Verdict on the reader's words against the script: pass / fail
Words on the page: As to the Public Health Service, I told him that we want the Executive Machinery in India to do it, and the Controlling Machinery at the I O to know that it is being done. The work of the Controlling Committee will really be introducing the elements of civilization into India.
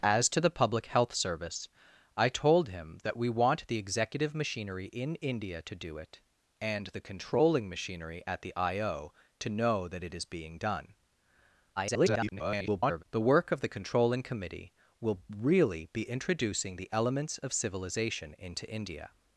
fail